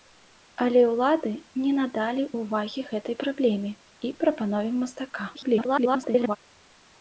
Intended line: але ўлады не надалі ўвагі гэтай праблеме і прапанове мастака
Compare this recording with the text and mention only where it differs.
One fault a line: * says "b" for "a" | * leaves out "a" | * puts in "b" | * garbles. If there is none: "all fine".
* garbles